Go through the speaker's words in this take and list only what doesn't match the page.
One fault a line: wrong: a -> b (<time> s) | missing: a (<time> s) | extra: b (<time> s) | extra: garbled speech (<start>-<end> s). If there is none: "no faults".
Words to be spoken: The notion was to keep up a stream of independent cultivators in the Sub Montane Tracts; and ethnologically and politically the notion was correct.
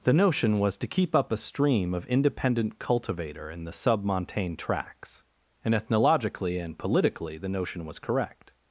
wrong: cultivators -> cultivator (2.8 s)